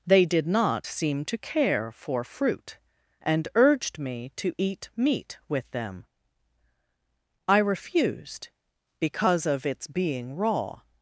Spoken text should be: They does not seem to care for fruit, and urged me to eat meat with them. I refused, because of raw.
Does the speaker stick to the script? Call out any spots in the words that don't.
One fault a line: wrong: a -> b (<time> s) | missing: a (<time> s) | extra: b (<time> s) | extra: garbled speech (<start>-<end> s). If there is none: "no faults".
wrong: does -> did (0.2 s)
extra: its being (9.7 s)